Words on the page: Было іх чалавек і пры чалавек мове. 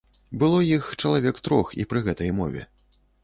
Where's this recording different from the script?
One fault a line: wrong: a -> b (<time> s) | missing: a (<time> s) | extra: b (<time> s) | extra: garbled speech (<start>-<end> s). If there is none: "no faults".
extra: трох (1.5 s)
wrong: чалавек -> гэтай (2.1 s)